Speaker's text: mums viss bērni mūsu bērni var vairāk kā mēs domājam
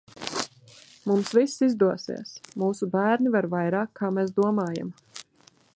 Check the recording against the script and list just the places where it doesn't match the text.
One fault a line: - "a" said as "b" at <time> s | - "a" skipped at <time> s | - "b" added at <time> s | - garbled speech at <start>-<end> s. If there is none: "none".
- "bērni" said as "izdosies" at 1.7 s